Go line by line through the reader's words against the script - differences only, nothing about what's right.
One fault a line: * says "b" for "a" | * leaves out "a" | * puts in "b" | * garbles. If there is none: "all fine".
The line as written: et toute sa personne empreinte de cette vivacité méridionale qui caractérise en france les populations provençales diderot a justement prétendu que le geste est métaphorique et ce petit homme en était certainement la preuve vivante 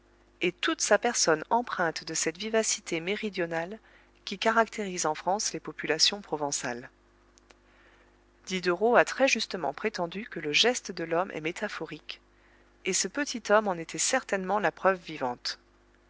* puts in "très"
* puts in "de l'homme"